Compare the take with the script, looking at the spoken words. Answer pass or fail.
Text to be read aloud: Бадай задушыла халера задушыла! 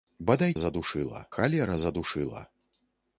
pass